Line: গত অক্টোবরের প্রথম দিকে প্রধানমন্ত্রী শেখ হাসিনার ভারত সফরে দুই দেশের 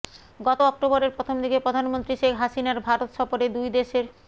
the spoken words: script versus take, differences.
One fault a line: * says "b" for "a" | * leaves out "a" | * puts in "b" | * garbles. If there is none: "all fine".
all fine